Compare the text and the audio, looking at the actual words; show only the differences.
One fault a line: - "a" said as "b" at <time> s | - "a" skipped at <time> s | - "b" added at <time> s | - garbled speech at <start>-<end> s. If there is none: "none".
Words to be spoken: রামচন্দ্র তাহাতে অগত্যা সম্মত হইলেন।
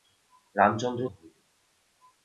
- "তাহাতে অগত্যা সম্মত" skipped at 1.0 s